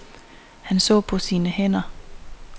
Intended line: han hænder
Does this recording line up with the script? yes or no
no